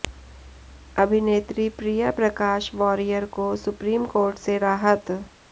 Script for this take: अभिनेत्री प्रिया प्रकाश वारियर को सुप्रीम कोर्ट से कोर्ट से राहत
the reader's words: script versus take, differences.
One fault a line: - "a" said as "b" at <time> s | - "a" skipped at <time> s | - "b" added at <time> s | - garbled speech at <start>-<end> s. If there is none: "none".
- "कोर्ट से" skipped at 4.6 s